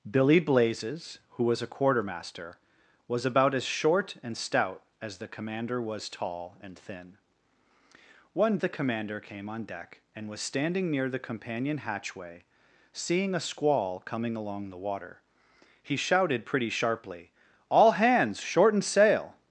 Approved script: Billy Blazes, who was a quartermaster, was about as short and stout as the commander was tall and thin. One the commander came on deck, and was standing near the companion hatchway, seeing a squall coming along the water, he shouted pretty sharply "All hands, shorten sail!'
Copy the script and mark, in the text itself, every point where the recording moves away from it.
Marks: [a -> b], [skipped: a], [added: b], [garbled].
Billy Blazes, who was a quartermaster, was about as short and stout as the commander was tall and thin. One the commander came on deck, and was standing near the companion hatchway, seeing a squall coming along the water, he shouted pretty sharply "All hands, shorten sail!'